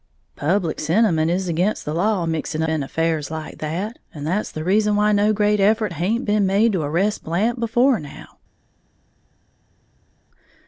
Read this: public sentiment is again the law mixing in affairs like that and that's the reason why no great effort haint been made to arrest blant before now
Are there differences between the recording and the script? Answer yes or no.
no